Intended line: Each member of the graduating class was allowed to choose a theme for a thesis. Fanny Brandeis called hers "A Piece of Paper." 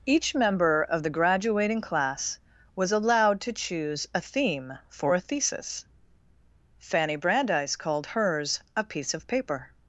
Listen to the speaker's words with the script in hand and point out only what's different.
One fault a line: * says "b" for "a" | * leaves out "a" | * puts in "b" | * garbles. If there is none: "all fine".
all fine